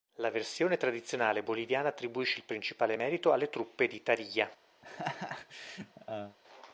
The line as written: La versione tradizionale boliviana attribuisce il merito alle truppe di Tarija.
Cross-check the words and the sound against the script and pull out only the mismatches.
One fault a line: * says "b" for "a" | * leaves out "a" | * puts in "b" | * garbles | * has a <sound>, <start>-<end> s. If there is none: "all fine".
* puts in "principale"
* has a laugh, 4.8-6.4 s